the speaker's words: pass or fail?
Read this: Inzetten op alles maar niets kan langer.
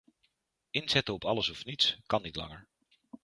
fail